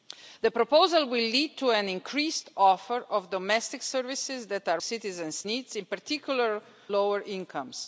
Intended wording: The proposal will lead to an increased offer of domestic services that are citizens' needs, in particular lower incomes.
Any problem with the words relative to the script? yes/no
no